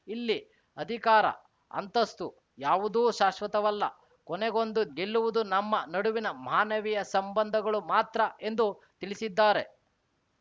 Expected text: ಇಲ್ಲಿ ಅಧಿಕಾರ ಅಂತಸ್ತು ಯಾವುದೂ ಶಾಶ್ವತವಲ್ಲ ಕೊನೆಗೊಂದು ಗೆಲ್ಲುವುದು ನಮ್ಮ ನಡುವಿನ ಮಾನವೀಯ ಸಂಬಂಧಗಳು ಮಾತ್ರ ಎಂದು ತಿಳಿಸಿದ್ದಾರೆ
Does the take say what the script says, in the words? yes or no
yes